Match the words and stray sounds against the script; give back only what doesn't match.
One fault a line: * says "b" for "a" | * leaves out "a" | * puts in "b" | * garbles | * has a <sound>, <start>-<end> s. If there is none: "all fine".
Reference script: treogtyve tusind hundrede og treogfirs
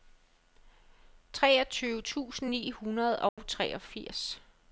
* puts in "ni"
* has a dropout, 3.3-3.4 s